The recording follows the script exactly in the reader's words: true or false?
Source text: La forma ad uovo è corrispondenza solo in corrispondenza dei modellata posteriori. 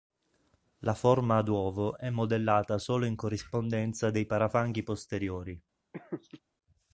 false